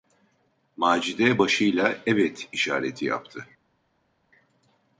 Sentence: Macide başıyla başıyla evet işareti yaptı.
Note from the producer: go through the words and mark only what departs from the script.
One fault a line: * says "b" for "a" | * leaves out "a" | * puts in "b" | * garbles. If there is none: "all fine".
* leaves out "başıyla"